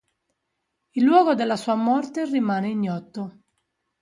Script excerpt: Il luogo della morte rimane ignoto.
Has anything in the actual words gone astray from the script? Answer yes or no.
yes